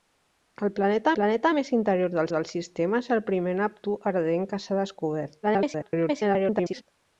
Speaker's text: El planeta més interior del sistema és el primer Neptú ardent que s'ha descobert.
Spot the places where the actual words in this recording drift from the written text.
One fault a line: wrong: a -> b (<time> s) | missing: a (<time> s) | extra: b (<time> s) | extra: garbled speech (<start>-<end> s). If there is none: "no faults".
extra: planeta (1.2 s)
extra: del (2.3 s)
extra: garbled speech (5.4-6.8 s)